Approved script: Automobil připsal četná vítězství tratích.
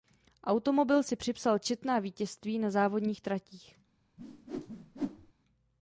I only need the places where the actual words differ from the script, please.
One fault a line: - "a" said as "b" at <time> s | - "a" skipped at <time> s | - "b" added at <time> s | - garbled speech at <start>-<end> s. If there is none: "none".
- "si" added at 1.0 s
- "na závodních" added at 2.6 s